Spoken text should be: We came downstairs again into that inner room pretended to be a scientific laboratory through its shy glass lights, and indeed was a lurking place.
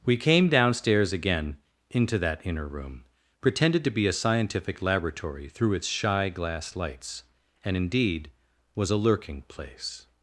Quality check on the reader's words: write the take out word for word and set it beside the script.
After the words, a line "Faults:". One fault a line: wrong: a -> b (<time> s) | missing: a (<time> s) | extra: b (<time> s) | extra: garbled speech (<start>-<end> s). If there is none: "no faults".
We came downstairs again into that inner room pretended to be a scientific laboratory through its shy glass lights, and indeed was a lurking place.
Faults:
no faults